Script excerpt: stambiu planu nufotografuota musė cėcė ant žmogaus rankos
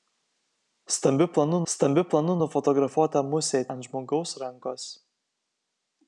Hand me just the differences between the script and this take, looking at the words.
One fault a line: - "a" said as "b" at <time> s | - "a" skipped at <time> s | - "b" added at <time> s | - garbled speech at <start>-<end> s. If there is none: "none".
- "stambiu planu" added at 1.7 s
- "cėcė" skipped at 3.6 s